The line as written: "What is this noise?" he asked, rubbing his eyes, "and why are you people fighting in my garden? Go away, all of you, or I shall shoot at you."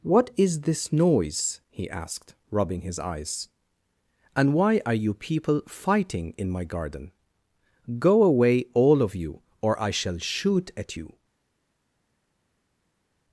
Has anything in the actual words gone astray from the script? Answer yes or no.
no